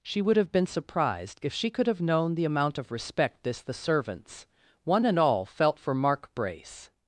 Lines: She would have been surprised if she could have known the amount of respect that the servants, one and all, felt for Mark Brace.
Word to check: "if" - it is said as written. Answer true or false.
true